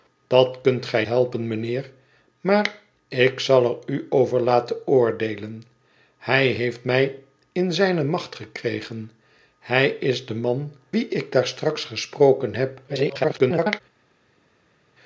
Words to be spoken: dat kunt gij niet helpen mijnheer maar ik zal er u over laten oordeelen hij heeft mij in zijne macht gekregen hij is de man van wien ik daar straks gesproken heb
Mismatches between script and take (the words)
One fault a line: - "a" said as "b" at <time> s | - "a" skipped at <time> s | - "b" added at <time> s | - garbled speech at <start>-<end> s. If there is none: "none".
- "niet" skipped at 1.1 s
- "van" skipped at 10.7 s
- garbled speech at 12.9-13.8 s